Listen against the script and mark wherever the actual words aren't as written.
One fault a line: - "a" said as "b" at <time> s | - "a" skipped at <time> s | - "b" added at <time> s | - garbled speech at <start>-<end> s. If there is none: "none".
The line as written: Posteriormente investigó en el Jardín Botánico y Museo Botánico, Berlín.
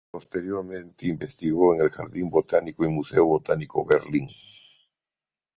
none